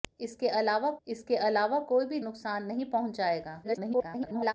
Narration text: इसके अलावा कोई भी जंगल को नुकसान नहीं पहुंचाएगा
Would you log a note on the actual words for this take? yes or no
yes